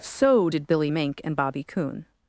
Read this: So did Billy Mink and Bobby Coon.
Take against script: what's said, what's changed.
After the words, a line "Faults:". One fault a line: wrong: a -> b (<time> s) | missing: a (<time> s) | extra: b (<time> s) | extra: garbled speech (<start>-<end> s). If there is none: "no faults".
So did Billy Mink and Bobby Coon.
Faults:
no faults